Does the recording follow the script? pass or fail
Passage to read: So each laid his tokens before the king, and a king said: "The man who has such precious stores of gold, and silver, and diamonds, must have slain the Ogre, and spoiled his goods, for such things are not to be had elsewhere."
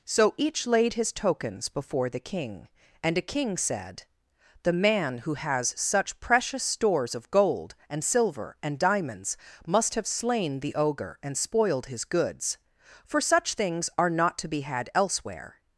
pass